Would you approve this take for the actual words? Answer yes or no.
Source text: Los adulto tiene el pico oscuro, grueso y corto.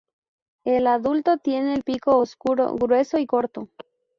no